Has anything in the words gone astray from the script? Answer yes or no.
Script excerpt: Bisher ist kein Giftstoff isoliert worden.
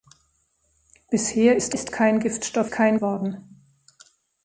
yes